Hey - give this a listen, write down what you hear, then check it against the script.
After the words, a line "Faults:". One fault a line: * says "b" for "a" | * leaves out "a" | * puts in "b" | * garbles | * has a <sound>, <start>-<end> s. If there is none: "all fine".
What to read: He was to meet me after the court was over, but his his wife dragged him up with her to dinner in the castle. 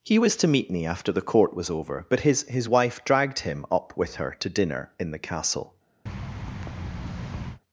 He was to meet me after the court was over, but his his wife dragged him up with her to dinner in the castle.
Faults:
* has a thud, 6.1-7.6 s